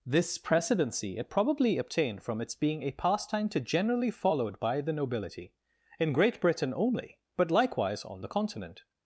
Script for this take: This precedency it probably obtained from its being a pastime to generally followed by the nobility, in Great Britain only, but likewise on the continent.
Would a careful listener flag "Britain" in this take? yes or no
no